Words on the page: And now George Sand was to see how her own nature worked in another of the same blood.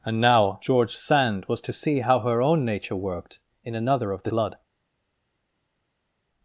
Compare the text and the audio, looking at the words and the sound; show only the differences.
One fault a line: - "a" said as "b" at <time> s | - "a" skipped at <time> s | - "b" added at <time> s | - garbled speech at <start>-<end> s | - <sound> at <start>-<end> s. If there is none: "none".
- "same" skipped at 4.3 s